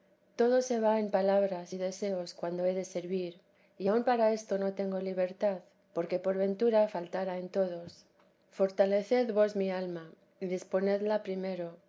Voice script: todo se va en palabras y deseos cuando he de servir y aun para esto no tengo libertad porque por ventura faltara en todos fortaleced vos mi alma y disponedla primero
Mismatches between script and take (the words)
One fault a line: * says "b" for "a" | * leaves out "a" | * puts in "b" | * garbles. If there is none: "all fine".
all fine